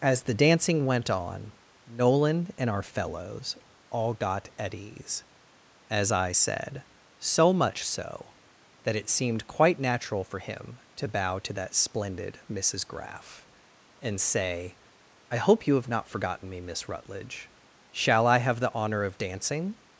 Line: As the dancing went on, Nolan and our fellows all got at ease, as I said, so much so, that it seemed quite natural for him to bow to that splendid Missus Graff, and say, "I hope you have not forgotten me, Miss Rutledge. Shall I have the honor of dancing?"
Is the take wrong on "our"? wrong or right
right